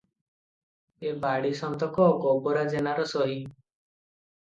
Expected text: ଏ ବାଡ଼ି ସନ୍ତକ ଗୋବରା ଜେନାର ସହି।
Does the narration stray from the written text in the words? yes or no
no